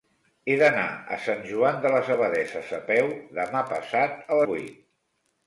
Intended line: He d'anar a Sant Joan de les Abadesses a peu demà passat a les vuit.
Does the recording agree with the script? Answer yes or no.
no